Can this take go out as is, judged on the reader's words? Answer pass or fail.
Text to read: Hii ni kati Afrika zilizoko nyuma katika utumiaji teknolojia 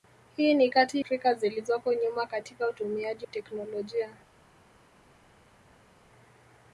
pass